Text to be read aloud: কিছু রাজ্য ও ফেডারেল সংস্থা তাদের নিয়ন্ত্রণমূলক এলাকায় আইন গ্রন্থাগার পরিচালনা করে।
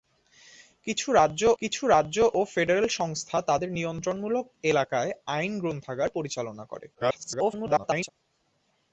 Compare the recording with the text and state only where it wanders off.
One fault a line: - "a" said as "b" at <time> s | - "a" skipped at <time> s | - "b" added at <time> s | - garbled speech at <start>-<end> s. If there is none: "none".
- "কিছু রাজ্য" added at 1.6 s
- garbled speech at 6.9-8.1 s